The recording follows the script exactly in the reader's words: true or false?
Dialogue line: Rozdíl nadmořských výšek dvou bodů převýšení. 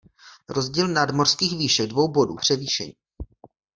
true